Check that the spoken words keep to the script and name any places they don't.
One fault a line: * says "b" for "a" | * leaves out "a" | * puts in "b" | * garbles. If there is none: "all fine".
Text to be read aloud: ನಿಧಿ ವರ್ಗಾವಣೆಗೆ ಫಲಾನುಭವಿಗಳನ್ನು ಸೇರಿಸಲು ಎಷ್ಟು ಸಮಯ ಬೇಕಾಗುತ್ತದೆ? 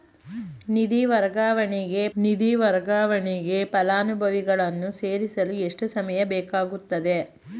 * puts in "ನಿಧಿ ವರ್ಗಾವಣೆಗೆ"